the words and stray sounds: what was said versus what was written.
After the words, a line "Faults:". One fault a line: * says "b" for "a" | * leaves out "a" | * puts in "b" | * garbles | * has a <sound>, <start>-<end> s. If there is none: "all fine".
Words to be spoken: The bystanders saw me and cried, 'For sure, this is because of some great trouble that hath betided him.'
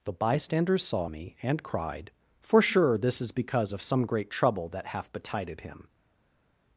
The bystanders saw me and cried, 'For sure, this is because of some great trouble that hath betided him.'
Faults:
all fine